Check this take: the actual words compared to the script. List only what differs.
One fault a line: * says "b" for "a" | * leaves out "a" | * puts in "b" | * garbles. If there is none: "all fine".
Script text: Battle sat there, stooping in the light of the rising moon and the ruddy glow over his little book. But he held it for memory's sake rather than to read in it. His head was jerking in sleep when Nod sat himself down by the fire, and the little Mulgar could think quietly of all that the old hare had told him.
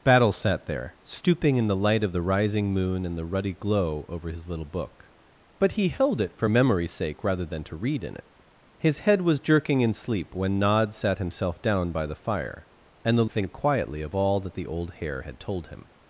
* leaves out "little Mulgar could"